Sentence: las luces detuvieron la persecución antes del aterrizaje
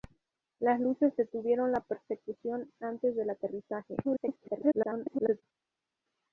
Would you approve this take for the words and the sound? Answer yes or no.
no